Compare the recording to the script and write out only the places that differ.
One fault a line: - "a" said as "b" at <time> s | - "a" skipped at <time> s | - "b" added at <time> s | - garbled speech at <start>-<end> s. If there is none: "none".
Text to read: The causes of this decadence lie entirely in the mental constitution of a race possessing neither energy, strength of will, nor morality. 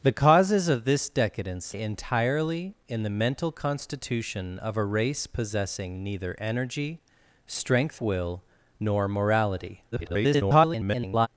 - "lie" skipped at 1.8 s
- "of" skipped at 8.0 s
- garbled speech at 9.9-11.3 s